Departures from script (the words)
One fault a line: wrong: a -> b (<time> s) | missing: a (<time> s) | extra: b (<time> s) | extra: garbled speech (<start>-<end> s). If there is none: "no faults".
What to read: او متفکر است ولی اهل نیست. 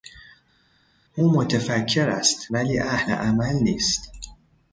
extra: عمل (3.1 s)